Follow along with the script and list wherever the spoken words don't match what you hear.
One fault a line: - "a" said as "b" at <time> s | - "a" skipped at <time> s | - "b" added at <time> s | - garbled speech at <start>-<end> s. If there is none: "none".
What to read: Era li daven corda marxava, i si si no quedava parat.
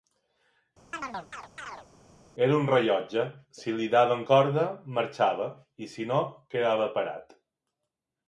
- "un rellotge si" added at 2.6 s
- "si" skipped at 6.1 s